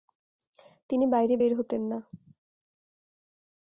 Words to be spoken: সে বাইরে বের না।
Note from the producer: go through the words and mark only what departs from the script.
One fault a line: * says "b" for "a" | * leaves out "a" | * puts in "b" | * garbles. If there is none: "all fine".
* says "তিনি" for "সে"
* puts in "হতেন"